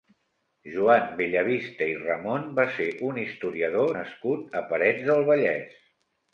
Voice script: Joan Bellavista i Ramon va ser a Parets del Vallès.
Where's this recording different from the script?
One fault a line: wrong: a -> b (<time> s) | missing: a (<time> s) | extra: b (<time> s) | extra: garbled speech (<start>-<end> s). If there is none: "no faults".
extra: un historiador nascut (3.1 s)